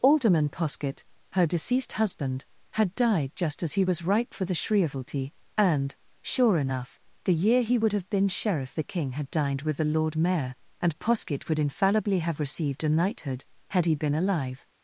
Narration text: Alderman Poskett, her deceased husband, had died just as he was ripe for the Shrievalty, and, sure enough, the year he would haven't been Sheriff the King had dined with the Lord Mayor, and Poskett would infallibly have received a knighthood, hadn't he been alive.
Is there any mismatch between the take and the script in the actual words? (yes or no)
yes